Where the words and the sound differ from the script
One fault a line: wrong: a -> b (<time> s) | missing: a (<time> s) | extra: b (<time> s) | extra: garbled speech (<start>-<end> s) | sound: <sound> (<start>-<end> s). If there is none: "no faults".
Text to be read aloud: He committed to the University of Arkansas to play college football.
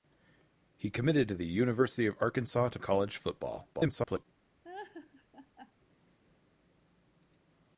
missing: play (2.8 s)
extra: garbled speech (3.7-4.3 s)
sound: laugh (4.6-5.7 s)